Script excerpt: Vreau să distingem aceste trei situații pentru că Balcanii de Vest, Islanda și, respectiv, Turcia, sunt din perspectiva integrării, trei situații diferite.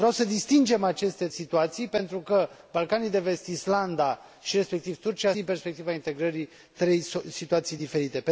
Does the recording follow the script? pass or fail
fail